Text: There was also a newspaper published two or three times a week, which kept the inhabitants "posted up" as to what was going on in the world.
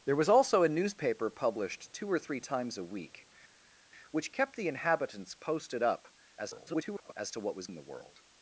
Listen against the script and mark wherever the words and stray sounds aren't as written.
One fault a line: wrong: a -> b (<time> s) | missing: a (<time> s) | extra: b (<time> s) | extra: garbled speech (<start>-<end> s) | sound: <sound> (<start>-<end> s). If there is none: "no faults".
extra: garbled speech (6.4-7.1 s)
missing: going on (7.7 s)